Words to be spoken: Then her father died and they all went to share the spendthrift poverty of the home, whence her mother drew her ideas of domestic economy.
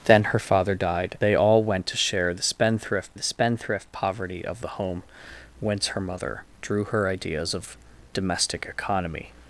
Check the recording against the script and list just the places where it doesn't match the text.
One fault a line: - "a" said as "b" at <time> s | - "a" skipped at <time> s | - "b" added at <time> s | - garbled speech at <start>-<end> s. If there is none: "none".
- "and" skipped at 1.2 s
- "the spendthrift" added at 3.1 s